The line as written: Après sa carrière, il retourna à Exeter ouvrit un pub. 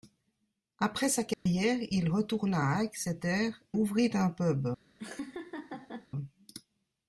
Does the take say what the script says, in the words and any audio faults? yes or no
no